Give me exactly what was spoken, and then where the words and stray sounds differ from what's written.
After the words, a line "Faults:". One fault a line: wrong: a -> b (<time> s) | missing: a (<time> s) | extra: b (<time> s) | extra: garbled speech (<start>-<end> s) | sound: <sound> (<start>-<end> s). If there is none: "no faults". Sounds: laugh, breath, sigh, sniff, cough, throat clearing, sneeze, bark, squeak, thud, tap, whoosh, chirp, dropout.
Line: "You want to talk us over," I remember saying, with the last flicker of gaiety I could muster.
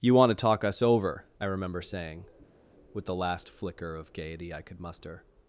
"You want to talk us over," I remember saying, with the last flicker of gaiety I could muster.
Faults:
no faults